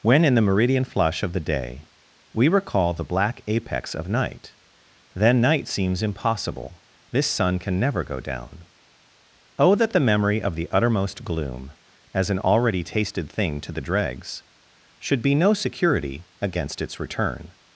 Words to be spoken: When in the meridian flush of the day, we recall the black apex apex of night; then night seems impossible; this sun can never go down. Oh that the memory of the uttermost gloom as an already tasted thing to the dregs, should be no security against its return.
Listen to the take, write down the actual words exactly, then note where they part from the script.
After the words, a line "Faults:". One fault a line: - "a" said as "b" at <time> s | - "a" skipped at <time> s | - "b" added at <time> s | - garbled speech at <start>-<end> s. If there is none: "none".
When in the meridian flush of the day, we recall the black apex of night; then night seems impossible; this sun can never go down. Oh that the memory of the uttermost gloom as an already tasted thing to the dregs, should be no security against its return.
Faults:
- "apex" skipped at 3.9 s